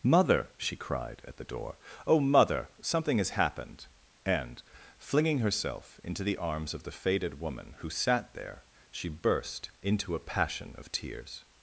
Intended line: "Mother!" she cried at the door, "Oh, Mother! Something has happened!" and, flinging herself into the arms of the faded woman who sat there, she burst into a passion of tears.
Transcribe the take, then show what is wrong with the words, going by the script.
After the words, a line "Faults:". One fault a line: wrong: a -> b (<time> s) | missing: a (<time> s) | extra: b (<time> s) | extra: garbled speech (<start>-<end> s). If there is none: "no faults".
"Mother!" she cried at the door, "Oh, Mother! Something has happened!" and, flinging herself into the arms of the faded woman who sat there, she burst into a passion of tears.
Faults:
no faults